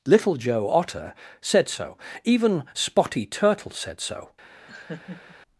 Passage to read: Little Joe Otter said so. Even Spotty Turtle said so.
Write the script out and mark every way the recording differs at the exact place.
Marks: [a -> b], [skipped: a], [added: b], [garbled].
Little Joe Otter said so. Even Spotty Turtle said so.